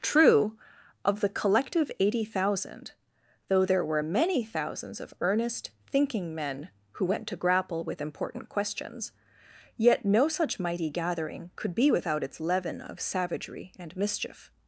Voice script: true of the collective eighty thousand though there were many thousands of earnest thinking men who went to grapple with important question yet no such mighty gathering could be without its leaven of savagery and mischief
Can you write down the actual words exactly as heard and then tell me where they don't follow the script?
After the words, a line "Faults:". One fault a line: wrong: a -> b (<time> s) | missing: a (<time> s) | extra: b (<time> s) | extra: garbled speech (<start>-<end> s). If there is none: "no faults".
true of the collective eighty thousand though there were many thousands of earnest thinking men who went to grapple with important questions yet no such mighty gathering could be without its leaven of savagery and mischief
Faults:
wrong: question -> questions (8.5 s)